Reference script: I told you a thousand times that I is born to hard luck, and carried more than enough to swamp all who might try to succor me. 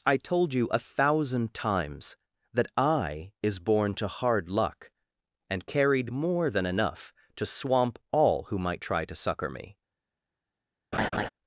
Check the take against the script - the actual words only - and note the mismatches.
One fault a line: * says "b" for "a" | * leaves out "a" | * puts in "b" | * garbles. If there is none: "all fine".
all fine